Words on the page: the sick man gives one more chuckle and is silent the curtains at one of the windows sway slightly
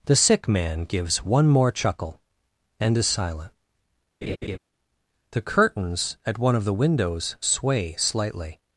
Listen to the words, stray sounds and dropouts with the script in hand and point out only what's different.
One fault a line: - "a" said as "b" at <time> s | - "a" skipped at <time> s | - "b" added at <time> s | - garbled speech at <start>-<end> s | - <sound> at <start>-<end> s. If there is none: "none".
- laugh at 4.2-4.6 s